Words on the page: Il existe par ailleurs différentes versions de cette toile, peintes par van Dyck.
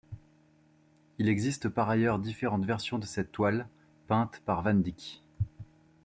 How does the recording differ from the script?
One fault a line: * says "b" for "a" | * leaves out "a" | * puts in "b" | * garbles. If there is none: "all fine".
all fine